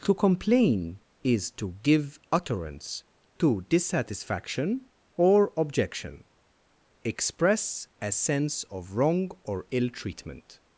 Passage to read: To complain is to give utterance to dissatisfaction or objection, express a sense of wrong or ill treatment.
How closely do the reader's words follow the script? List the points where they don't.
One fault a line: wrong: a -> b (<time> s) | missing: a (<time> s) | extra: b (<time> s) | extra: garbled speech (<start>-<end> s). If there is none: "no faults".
no faults